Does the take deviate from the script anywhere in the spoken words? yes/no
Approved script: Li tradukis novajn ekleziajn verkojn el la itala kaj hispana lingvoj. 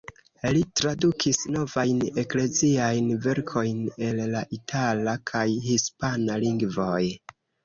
no